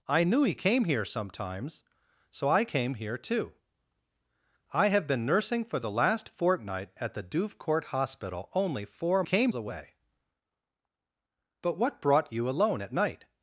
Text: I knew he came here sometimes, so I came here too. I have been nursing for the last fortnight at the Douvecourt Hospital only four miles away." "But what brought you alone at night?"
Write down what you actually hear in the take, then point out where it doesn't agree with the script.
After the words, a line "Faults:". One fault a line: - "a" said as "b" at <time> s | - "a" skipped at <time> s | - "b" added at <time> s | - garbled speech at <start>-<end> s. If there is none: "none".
I knew he came here sometimes, so I came here too. I have been nursing for the last fortnight at the Douvecourt Hospital only four came away." "But what brought you alone at night?"
Faults:
- "miles" said as "came" at 9.2 s